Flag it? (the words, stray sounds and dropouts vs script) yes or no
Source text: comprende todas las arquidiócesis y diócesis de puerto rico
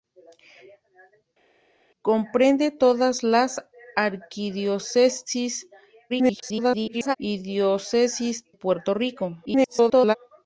yes